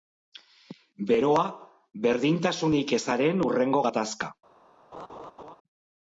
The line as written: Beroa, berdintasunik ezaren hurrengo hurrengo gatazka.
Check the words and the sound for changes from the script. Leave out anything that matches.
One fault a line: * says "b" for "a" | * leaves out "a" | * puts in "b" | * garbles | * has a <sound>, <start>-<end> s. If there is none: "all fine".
* leaves out "hurrengo"
* has a laugh, 4.9-5.6 s